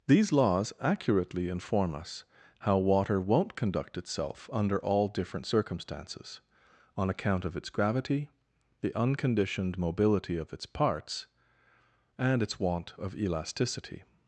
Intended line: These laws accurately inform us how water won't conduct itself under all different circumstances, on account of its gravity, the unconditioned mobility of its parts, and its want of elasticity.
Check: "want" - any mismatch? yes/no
no